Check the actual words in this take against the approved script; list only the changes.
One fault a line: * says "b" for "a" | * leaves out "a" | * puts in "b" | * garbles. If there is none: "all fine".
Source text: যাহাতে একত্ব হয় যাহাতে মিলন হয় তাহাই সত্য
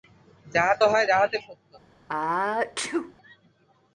* leaves out "একত্ব"
* leaves out "মিলন হয় তাহাই"